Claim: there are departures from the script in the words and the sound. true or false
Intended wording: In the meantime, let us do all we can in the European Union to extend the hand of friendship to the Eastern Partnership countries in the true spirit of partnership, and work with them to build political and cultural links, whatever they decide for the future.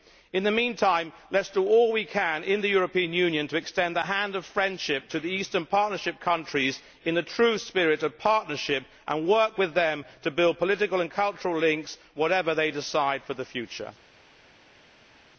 false